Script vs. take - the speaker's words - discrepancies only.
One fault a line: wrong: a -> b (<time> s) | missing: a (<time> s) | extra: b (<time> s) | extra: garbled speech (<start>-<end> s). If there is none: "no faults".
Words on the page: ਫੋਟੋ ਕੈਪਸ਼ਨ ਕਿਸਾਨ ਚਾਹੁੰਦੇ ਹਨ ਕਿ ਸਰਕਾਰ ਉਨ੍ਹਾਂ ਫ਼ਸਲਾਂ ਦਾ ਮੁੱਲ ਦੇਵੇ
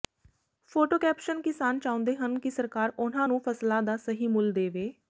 extra: ਨੂੰ (3.3 s)
extra: ਸਹੀ (4.0 s)